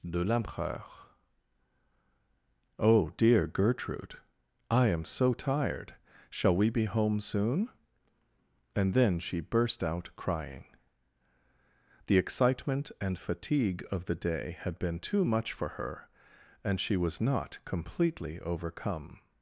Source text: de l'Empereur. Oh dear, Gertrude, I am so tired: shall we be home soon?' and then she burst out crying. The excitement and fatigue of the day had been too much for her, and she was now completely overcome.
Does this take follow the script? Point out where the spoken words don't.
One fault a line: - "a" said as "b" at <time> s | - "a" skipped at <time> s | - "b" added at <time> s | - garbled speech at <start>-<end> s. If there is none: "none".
- "now" said as "not" at 17.2 s